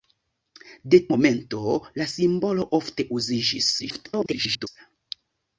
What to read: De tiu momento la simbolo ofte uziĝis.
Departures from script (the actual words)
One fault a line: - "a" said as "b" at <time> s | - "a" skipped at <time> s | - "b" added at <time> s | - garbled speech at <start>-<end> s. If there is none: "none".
- "tiu" skipped at 1.0 s
- garbled speech at 3.8-4.7 s